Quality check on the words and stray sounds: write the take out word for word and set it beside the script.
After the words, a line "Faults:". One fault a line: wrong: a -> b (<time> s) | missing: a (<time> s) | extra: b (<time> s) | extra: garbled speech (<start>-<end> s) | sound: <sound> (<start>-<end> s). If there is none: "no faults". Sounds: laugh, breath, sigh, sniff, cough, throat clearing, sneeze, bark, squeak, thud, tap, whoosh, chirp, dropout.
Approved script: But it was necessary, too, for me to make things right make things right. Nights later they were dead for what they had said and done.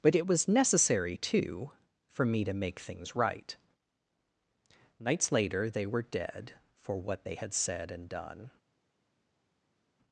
But it was necessary, too, for me to make things right. Nights later they were dead for what they had said and done.
Faults:
missing: make things right (3.5 s)